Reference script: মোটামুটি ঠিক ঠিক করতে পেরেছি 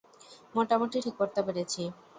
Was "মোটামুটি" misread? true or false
false